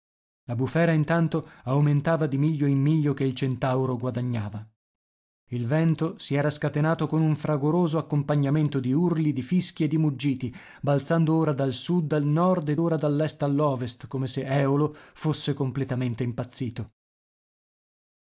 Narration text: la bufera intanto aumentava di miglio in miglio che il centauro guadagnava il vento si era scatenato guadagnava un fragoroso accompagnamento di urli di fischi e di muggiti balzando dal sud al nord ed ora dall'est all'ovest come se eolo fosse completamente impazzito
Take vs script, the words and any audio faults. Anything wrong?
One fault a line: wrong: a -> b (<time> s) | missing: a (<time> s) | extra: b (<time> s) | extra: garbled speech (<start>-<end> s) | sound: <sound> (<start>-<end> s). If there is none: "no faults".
wrong: guadagnava -> con (7.0 s)
extra: ora (11.3 s)